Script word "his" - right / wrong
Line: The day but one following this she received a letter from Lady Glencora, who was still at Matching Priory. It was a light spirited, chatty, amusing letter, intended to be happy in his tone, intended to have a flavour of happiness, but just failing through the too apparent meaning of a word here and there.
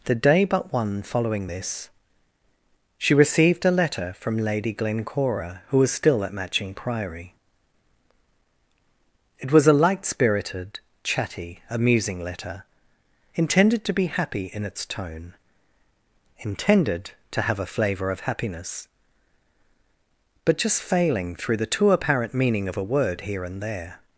wrong